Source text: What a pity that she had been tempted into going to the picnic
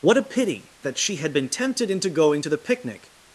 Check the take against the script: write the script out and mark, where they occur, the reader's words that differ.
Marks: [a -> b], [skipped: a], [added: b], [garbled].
What a pity that she had been tempted into going to the picnic